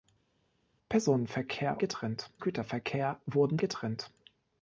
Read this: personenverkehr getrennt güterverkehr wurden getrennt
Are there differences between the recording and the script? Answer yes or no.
no